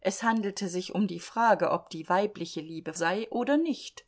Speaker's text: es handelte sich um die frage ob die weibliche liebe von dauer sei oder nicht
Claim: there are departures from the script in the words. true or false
true